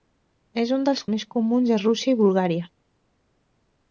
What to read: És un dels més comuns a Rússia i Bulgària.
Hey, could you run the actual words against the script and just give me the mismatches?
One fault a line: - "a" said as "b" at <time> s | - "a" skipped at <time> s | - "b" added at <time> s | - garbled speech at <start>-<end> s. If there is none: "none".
none